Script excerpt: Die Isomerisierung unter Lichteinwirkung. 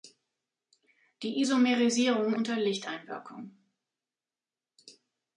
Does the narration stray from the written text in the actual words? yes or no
no